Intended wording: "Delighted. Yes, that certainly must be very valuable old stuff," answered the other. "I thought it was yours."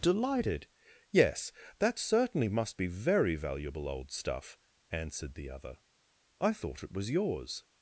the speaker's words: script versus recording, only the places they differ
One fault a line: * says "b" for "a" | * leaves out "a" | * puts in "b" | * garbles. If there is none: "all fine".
all fine